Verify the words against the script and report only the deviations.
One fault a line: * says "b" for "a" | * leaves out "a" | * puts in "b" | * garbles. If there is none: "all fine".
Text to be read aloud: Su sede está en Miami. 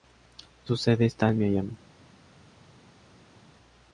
all fine